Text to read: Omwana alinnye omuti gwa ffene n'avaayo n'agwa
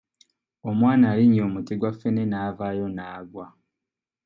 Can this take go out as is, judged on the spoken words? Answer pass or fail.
pass